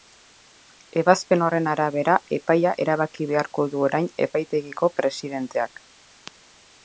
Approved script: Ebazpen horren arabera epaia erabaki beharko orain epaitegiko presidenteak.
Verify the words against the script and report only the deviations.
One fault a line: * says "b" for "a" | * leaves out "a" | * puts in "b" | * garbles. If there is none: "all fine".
* puts in "du"